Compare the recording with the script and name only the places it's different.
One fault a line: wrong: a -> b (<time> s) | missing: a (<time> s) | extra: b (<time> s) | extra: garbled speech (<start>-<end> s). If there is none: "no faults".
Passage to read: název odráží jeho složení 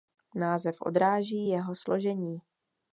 no faults